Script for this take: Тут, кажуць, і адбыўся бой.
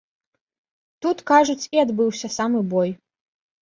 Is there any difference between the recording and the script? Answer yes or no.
yes